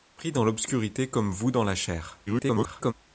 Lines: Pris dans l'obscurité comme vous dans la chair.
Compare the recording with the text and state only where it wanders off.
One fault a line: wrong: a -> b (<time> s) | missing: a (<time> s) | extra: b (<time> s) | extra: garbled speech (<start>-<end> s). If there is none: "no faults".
extra: garbled speech (2.3-2.9 s)